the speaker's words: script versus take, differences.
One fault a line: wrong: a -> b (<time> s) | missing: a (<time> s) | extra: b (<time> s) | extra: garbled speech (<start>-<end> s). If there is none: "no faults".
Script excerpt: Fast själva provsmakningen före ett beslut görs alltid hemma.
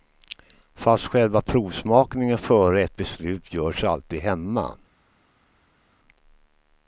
no faults